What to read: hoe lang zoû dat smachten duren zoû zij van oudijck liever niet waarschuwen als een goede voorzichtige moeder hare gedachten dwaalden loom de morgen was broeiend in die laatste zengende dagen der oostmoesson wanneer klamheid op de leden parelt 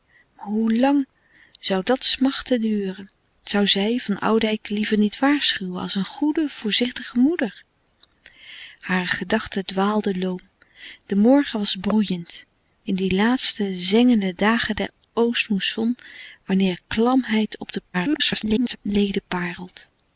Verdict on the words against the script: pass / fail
fail